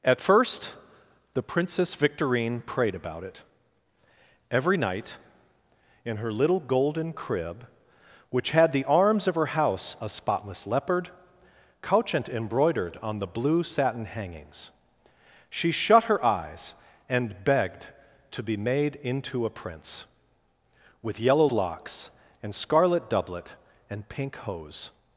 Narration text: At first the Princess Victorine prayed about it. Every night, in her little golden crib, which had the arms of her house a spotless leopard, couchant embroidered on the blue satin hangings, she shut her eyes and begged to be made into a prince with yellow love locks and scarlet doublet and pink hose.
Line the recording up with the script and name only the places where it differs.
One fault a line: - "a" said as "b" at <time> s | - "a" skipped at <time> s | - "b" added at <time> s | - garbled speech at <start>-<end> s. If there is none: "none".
- "love" skipped at 21.5 s